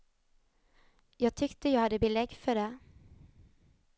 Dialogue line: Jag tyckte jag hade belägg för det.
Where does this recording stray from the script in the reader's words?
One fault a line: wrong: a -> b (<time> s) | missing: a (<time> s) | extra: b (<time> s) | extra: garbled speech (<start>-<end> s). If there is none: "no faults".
no faults